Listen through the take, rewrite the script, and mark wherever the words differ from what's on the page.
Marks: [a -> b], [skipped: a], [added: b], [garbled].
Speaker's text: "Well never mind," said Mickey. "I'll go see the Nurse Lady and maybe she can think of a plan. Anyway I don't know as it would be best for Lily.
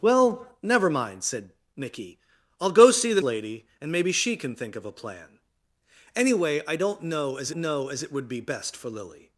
"Well never mind," said Mickey. "I'll go see the [skipped: Nurse] Lady and maybe she can think of a plan. Anyway I don't know as [added: know as] it would be best for Lily.